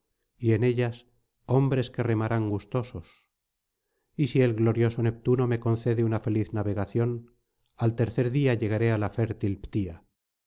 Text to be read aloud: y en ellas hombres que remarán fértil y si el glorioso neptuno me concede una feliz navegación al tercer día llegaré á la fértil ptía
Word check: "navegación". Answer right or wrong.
right